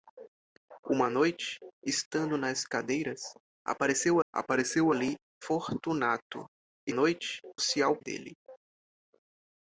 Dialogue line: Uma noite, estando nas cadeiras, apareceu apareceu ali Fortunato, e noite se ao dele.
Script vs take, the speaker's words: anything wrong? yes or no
no